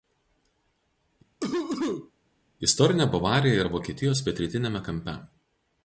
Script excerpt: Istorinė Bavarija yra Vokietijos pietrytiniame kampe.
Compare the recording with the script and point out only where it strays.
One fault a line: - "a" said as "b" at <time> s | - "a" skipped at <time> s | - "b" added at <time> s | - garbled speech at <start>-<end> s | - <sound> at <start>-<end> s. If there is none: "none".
- cough at 1.4-2.1 s